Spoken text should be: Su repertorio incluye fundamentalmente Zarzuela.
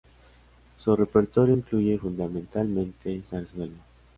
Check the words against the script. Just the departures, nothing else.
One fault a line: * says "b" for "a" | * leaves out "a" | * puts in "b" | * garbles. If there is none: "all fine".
all fine